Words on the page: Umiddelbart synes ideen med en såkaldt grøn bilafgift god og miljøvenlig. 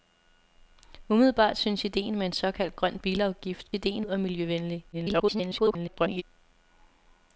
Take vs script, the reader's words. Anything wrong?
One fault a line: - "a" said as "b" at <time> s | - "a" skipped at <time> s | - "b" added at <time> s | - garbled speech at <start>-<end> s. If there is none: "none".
- "god" said as "ideen" at 3.7 s
- garbled speech at 4.9-6.2 s